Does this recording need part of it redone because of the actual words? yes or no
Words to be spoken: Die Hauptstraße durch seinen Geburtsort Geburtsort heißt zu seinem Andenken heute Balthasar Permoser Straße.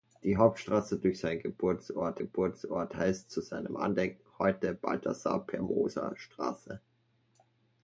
no